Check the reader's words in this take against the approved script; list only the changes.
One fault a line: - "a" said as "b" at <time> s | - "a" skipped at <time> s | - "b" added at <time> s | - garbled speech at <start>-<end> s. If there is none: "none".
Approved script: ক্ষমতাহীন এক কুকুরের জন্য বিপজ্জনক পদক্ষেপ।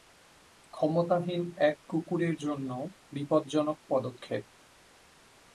none